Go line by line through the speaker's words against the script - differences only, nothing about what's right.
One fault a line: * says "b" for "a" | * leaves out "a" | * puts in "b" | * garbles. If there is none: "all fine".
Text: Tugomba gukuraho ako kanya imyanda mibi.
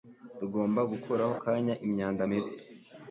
* leaves out "ako"